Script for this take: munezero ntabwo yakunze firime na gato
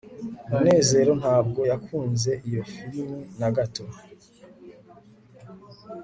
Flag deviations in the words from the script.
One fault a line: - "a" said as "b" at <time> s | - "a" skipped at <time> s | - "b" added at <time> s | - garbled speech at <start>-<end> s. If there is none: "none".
- "iyo" added at 2.5 s